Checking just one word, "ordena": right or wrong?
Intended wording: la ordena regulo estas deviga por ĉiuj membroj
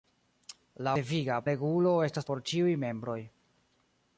wrong